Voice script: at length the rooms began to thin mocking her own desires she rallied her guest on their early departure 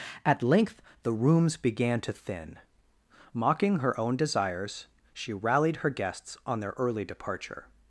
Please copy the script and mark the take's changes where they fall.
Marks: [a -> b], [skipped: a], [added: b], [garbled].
at length the rooms began to thin mocking her own desires she rallied her [guest -> guests] on their early departure